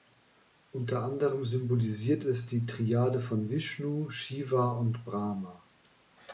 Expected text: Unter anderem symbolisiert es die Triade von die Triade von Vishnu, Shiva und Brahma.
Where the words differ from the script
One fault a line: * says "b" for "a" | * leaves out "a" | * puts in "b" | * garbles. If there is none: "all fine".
* leaves out "die Triade von"